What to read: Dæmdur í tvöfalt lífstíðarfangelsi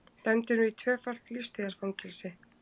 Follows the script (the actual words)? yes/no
yes